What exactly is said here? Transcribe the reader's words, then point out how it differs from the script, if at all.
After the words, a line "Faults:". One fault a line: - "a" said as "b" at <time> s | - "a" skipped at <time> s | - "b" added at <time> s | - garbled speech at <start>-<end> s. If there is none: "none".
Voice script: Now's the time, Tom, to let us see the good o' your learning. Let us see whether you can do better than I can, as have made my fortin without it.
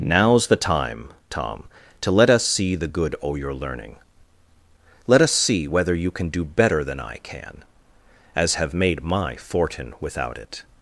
Now's the time, Tom, to let us see the good o' your learning. Let us see whether you can do better than I can, as have made my fortin without it.
Faults:
none